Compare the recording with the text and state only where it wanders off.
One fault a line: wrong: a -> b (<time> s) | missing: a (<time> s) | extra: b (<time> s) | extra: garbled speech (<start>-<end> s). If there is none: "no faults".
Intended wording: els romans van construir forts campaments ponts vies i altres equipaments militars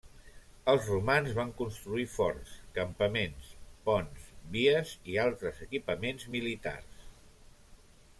no faults